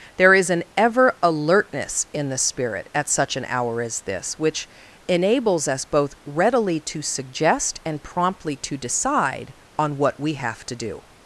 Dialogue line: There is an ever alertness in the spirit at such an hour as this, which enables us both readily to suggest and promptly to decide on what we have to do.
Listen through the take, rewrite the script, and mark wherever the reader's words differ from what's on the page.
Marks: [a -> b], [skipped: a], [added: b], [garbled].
There is an ever alertness in the spirit at such an hour as this, which enables us both readily to suggest and promptly to decide on what we have to do.